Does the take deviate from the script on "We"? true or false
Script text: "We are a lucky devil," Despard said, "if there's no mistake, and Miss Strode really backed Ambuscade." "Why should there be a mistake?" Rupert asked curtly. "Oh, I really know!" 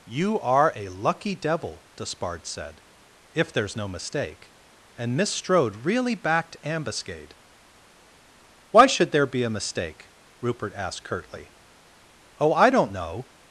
true